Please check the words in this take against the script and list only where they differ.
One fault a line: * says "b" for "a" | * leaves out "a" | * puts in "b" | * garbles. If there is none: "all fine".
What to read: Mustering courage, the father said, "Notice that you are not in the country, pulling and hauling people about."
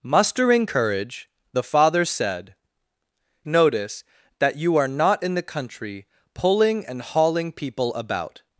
all fine